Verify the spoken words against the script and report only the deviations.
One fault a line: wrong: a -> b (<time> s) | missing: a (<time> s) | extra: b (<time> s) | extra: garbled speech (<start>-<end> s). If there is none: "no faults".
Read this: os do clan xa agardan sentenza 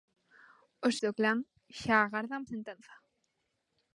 no faults